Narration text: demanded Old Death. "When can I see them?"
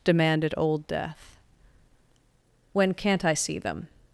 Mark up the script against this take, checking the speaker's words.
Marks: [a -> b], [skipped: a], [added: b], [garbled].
demanded Old Death. "When [can -> can't] I see them?"